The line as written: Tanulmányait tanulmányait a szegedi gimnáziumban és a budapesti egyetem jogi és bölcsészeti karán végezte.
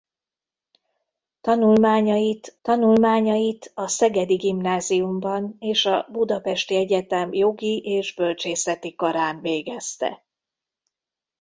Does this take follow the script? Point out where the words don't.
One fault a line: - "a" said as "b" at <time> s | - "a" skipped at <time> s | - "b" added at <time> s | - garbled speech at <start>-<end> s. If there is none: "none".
none